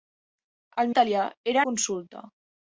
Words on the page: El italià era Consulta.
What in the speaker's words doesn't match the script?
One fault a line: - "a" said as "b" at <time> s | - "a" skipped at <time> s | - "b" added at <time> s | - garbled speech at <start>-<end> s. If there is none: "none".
none